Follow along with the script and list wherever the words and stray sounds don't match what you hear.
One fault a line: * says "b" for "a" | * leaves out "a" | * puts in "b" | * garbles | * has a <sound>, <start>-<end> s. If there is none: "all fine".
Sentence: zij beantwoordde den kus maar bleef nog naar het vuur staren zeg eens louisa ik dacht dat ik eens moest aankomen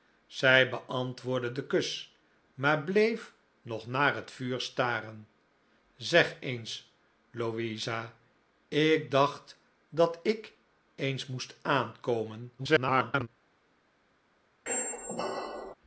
* garbles
* has a squeak, 14.7-15.7 s